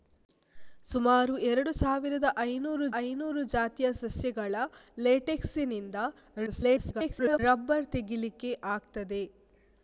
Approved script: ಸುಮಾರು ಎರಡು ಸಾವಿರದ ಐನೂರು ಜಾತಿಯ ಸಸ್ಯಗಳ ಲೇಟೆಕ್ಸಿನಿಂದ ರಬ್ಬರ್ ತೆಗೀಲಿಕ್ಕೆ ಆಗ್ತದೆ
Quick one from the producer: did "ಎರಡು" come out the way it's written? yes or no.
yes